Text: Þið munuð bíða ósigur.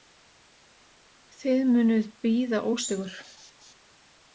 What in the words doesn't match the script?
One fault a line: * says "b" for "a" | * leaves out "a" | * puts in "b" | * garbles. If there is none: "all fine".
all fine